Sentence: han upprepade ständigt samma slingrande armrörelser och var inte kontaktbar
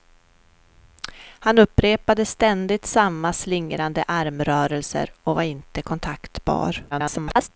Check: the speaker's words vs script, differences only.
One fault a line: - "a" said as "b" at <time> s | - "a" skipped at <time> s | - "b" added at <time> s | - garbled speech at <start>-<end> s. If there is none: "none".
- garbled speech at 6.9-7.5 s